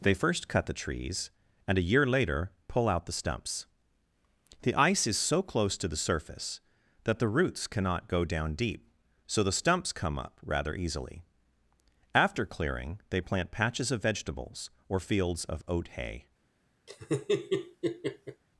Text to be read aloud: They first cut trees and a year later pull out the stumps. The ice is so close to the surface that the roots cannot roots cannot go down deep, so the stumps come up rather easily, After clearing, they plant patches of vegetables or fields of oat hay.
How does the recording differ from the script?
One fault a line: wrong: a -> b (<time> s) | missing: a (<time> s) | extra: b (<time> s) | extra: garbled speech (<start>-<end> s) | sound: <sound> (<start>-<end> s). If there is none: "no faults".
extra: the (0.7 s)
missing: roots cannot (8.1 s)
sound: laugh (16.9-18.4 s)